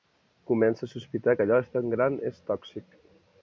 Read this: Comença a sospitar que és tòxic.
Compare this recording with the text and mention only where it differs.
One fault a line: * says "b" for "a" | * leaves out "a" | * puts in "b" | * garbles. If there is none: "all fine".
* puts in "allò tan gran"